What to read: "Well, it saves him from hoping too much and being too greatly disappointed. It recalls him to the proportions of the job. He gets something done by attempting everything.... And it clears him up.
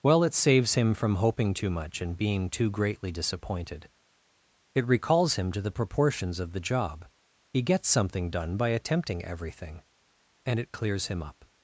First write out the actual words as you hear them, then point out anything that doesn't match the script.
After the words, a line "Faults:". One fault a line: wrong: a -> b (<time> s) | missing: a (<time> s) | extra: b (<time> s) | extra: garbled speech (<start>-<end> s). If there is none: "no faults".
"Well, it saves him from hoping too much and being too greatly disappointed. It recalls him to the proportions of the job. He gets something done by attempting everything.... And it clears him up.
Faults:
no faults